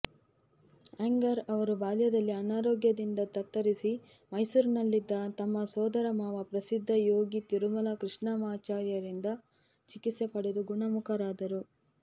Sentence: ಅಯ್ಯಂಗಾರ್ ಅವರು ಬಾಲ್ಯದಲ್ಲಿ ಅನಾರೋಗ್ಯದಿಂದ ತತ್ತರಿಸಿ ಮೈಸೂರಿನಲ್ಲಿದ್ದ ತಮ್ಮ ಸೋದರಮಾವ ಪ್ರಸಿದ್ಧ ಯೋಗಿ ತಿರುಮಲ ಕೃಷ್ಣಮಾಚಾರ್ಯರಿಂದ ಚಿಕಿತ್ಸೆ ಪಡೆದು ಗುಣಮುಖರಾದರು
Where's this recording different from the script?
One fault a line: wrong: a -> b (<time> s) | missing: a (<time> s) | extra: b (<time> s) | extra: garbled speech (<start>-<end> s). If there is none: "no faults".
no faults